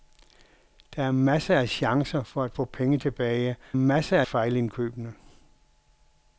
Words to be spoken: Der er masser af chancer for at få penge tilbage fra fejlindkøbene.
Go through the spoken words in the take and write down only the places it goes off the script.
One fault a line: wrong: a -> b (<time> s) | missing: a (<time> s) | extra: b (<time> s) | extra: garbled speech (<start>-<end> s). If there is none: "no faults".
wrong: fra -> masser (3.7 s)